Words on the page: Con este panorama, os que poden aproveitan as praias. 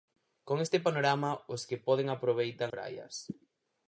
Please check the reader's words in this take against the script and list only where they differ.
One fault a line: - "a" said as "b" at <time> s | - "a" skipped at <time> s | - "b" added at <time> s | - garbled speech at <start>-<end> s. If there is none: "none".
- "as" skipped at 2.7 s